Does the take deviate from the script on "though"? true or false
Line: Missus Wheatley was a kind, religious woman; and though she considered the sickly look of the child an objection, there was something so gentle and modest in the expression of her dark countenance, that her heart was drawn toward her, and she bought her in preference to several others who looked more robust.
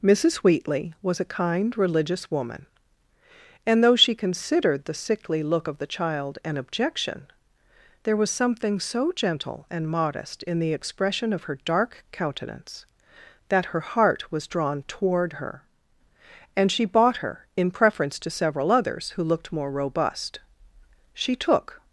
false